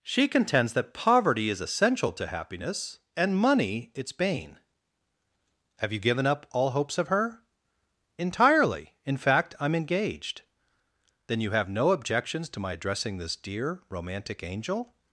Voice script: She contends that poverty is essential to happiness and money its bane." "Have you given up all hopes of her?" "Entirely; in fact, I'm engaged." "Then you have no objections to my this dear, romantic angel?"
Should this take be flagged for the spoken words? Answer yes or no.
yes